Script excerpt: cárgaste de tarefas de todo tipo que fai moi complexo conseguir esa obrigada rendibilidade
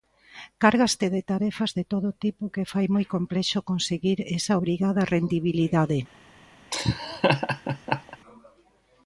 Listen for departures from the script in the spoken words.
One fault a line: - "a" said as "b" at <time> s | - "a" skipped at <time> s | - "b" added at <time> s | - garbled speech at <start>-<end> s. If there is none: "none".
none